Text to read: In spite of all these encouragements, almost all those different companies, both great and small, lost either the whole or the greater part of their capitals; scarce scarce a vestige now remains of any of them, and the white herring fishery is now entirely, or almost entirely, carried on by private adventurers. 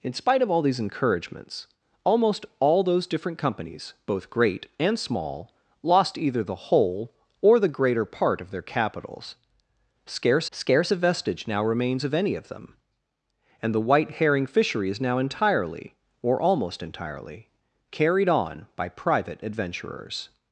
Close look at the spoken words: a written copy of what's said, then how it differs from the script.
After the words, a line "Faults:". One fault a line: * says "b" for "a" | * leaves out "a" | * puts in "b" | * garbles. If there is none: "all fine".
In spite of all these encouragements, almost all those different companies, both great and small, lost either the whole or the greater part of their capitals; scarce scarce a vestige now remains of any of them, and the white herring fishery is now entirely, or almost entirely, carried on by private adventurers.
Faults:
all fine